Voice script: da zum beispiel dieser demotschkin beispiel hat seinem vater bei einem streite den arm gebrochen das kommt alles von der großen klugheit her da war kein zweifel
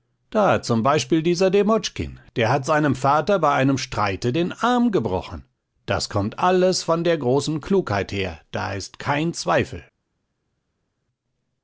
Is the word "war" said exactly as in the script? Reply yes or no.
no